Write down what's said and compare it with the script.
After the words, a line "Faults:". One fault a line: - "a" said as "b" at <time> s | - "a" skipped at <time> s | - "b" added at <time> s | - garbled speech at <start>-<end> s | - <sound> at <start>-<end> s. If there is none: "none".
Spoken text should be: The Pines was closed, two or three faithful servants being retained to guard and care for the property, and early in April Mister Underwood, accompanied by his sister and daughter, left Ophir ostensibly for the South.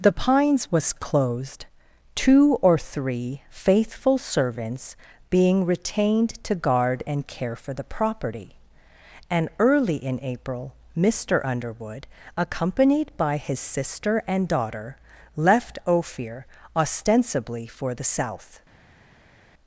The Pines was closed, two or three faithful servants being retained to guard and care for the property, and early in April Mister Underwood, accompanied by his sister and daughter, left Ophir ostensibly for the South.
Faults:
none